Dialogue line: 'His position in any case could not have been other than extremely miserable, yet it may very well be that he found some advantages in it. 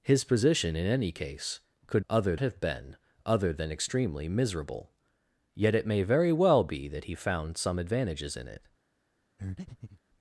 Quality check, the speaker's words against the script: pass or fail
fail